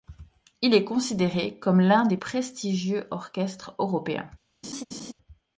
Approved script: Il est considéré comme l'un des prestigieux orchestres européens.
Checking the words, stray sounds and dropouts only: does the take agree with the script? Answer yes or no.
no